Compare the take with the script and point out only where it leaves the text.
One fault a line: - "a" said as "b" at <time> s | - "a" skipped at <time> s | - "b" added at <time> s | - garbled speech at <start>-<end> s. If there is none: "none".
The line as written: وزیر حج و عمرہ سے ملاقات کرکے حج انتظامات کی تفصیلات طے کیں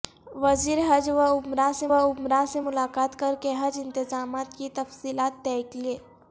- "عمرہ سے" added at 1.9 s